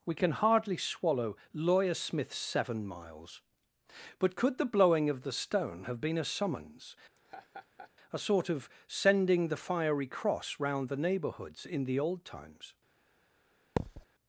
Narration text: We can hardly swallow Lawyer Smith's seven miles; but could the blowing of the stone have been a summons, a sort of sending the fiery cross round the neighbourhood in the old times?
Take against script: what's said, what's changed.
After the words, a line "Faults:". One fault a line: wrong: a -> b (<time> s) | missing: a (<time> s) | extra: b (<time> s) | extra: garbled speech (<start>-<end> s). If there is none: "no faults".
We can hardly swallow Lawyer Smith's seven miles; but could the blowing of the stone have been a summons, a sort of sending the fiery cross round the neighbourhoods in the old times?
Faults:
wrong: neighbourhood -> neighbourhoods (11.0 s)